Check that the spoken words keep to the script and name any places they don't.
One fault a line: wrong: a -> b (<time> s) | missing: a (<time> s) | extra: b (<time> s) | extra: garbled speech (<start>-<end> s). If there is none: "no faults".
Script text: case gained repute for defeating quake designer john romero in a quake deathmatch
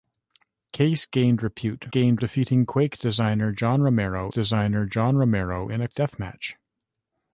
wrong: for -> gained (1.8 s)
extra: designer john romero (4.3 s)
missing: quake (5.9 s)